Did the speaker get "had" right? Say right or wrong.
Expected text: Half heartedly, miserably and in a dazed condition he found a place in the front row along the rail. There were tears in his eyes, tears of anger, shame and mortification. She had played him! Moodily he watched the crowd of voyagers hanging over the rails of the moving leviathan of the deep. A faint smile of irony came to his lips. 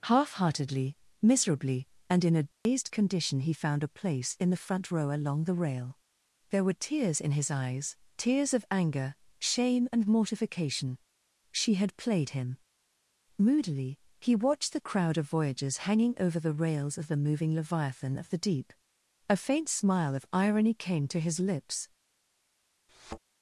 right